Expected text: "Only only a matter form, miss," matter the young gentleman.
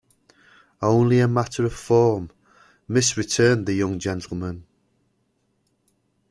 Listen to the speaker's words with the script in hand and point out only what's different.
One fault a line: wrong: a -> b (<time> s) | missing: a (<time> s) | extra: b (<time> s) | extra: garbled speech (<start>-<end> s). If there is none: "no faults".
missing: only (1.2 s)
extra: of (1.6 s)
wrong: matter -> returned (3.2 s)